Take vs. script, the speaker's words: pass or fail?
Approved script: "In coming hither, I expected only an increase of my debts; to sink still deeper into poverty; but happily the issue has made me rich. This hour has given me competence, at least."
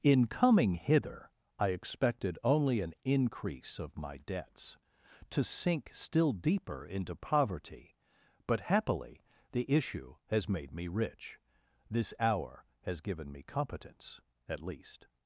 pass